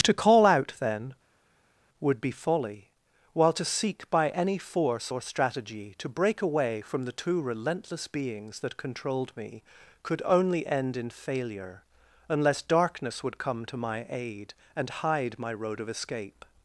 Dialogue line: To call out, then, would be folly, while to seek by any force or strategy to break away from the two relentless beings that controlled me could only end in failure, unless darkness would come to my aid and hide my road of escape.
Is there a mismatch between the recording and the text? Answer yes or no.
no